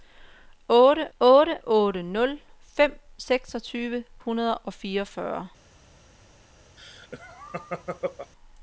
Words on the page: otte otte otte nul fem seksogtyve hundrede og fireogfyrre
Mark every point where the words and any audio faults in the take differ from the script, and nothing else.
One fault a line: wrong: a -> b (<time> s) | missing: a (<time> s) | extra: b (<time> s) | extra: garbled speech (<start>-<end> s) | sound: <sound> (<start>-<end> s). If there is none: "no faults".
sound: laugh (6.8-8.3 s)